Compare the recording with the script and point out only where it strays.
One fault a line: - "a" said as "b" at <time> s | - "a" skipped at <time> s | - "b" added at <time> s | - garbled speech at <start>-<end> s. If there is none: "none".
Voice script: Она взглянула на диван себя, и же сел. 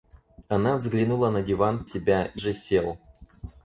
none